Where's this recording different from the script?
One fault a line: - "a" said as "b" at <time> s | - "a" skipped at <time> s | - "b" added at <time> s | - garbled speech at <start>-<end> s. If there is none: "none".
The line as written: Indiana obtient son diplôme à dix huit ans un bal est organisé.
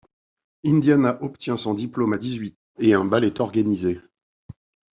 - "et" added at 2.8 s